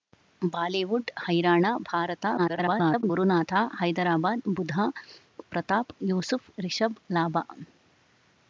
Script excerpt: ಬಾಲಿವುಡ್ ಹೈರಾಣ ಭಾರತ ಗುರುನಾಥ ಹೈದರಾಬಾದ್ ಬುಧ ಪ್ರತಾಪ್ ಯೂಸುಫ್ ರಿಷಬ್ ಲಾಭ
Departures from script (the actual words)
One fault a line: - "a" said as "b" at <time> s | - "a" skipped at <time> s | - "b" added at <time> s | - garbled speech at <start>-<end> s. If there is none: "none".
- garbled speech at 2.4-3.0 s